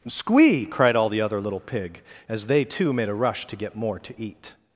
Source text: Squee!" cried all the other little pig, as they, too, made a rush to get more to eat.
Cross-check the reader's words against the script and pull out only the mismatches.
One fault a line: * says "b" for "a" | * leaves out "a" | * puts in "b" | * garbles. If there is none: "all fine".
all fine